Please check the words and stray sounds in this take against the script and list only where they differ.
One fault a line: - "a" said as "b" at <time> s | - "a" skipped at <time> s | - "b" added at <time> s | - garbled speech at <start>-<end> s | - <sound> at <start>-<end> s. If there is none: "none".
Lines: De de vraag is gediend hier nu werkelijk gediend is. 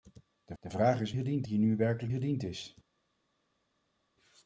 none